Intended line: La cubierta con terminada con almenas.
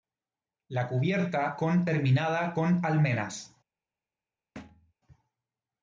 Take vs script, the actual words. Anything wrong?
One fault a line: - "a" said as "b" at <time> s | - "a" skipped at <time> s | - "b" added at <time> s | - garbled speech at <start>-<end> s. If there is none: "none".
none